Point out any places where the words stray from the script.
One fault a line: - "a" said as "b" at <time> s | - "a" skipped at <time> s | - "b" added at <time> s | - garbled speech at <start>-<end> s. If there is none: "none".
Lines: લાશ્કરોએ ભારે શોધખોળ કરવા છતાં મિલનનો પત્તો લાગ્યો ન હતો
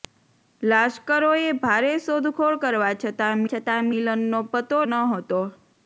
- "છતાં" added at 3.5 s
- "લાગ્યો" skipped at 4.8 s